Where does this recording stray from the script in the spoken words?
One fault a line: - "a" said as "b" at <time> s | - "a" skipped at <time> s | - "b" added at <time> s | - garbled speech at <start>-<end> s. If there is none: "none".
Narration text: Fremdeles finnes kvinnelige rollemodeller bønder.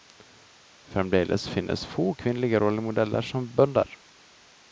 - "få" added at 1.9 s
- "som" added at 3.2 s